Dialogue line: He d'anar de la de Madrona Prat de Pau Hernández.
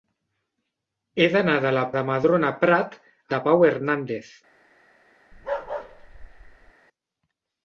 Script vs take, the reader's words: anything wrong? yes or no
no